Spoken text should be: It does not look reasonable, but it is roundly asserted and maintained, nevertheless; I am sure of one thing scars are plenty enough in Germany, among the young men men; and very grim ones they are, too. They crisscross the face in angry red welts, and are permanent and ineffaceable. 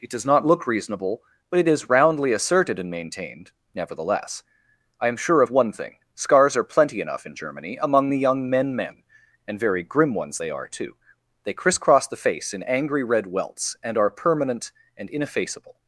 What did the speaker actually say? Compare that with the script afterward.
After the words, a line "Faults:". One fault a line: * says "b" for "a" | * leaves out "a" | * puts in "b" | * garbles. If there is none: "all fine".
It does not look reasonable, but it is roundly asserted and maintained, nevertheless; I am sure of one thing scars are plenty enough in Germany, among the young men men; and very grim ones they are, too. They crisscross the face in angry red welts, and are permanent and ineffaceable.
Faults:
all fine